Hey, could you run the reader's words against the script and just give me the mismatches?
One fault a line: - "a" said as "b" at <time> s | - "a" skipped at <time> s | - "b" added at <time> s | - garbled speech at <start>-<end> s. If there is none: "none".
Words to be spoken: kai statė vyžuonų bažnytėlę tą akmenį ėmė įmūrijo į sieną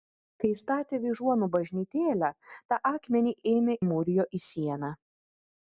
none